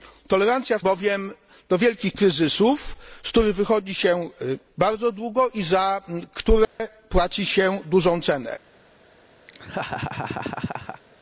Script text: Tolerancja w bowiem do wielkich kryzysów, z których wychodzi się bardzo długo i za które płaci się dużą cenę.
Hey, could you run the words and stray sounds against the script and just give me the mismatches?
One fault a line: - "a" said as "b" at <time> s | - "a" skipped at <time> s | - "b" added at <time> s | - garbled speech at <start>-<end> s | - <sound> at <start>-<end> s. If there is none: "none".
- dropout at 6.6-6.8 s
- laugh at 9.5-11.0 s